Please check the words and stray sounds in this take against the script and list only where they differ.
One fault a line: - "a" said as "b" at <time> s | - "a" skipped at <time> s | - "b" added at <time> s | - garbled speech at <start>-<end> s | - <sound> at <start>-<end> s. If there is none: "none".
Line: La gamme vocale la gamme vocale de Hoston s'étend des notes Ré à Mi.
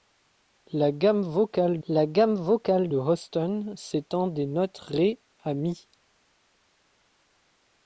none